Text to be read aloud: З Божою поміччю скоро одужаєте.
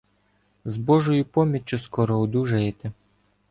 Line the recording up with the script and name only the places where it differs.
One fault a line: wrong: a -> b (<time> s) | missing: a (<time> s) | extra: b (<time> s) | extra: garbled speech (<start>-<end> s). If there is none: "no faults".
no faults